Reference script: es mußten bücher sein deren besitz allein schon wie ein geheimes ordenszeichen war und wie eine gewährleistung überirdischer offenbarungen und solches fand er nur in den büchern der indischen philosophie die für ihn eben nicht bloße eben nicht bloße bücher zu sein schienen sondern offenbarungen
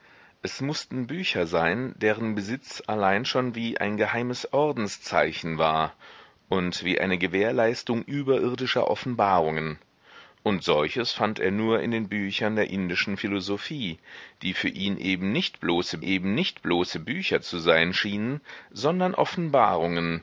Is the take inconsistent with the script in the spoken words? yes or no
no